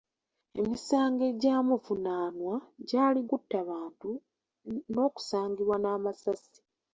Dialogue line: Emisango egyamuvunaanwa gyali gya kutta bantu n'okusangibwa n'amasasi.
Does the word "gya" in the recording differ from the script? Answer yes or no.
yes